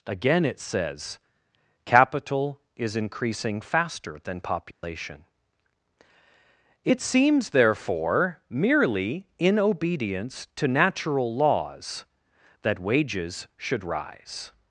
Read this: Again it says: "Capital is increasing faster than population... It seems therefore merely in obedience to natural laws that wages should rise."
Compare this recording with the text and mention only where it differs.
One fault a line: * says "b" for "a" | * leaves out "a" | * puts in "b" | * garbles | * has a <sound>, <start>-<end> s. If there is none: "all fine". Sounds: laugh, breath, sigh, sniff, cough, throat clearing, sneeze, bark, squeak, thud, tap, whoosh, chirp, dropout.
* has a dropout, 4.7-4.8 s